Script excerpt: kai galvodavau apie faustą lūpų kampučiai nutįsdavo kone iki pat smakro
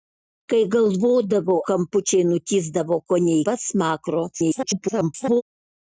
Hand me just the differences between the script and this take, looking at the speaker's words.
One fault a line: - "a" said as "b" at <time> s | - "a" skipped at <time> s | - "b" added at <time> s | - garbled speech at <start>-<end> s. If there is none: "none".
- "apie faustą lūpų" skipped at 1.6 s
- "iki" skipped at 3.4 s
- garbled speech at 4.3-5.4 s